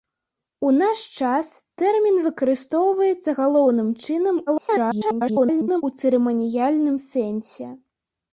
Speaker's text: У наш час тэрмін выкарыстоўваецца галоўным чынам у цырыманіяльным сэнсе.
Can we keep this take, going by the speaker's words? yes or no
no